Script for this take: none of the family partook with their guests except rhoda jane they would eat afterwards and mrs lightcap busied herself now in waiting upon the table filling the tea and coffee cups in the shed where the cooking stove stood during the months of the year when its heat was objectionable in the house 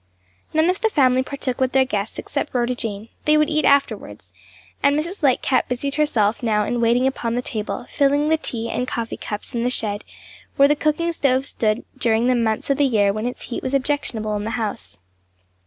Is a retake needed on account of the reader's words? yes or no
no